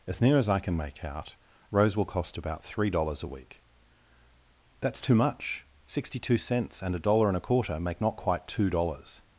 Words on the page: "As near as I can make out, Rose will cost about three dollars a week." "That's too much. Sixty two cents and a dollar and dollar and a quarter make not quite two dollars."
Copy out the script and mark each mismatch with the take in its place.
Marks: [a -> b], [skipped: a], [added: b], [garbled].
"As near as I can make out, Rose will cost about three dollars a week." "That's too much. Sixty two cents and a dollar and [skipped: dollar and] a quarter make not quite two dollars."